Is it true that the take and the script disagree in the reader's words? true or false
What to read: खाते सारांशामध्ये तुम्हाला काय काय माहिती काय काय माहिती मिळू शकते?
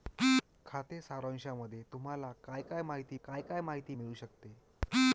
false